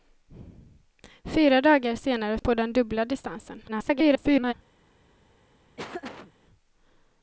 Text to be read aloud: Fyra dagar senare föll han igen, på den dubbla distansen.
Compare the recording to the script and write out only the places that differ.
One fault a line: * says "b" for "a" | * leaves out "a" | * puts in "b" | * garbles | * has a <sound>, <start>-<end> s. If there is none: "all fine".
* leaves out "föll han igen"
* garbles
* has a laugh, 5.8-6.3 s